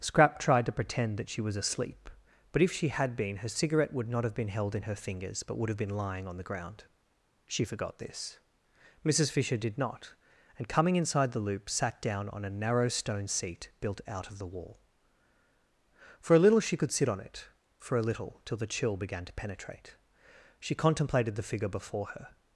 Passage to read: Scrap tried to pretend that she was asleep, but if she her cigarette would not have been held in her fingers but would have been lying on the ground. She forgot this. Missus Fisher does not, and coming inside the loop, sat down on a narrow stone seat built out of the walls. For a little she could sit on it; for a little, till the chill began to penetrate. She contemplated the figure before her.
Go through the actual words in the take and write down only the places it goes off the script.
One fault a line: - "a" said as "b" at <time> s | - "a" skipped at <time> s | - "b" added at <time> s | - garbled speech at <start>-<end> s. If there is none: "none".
- "had been" added at 2.9 s
- "does" said as "did" at 9.6 s
- "walls" said as "wall" at 14.5 s